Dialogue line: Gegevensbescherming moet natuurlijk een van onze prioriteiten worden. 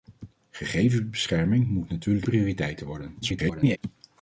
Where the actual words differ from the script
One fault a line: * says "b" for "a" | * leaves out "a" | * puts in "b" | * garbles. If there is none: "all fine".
* leaves out "een van onze"
* garbles